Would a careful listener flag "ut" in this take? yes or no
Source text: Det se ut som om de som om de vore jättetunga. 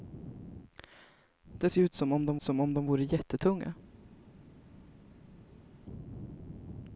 no